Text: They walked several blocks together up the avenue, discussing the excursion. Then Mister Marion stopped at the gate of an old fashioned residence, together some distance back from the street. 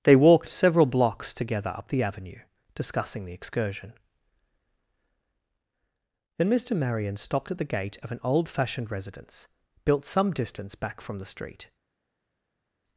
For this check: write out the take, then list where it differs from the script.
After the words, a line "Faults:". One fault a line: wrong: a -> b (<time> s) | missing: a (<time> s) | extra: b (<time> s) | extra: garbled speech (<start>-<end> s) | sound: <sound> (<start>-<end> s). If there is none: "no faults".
They walked several blocks together up the avenue, discussing the excursion. Then Mister Marion stopped at the gate of an old fashioned residence, built some distance back from the street.
Faults:
wrong: together -> built (9.8 s)